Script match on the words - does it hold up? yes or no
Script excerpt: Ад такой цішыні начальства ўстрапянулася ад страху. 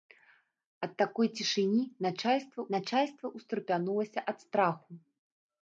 no